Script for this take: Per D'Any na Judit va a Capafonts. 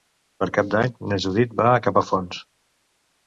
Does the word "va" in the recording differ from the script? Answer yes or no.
no